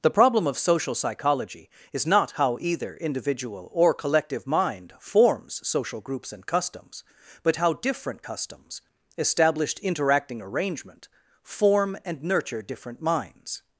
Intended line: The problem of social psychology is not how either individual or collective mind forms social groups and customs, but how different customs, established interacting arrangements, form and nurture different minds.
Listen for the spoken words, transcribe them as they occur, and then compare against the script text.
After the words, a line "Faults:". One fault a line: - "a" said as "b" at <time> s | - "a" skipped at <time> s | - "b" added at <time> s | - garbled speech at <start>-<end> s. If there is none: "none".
The problem of social psychology is not how either individual or collective mind forms social groups and customs, but how different customs, established interacting arrangement, form and nurture different minds.
Faults:
- "arrangements" said as "arrangement" at 10.4 s